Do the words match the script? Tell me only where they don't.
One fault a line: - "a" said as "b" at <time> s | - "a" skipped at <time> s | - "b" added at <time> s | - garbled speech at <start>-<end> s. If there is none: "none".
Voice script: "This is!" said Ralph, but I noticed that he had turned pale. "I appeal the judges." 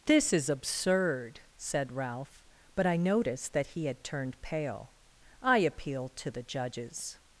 - "absurd" added at 0.5 s
- "to" added at 6.2 s